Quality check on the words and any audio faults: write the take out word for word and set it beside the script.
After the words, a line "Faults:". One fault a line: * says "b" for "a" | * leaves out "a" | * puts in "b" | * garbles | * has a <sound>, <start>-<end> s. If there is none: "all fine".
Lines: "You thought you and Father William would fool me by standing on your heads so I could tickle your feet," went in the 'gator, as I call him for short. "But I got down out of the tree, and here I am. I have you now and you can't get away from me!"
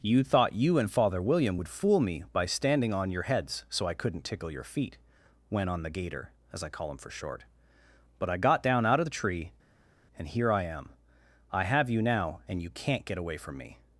"You thought you and Father William would fool me by standing on your heads so I couldn't tickle your feet," went on the 'gator, as I call him for short. "But I got down out of the tree, and here I am. I have you now and you can't get away from me!"
Faults:
* says "couldn't" for "could"
* says "on" for "in"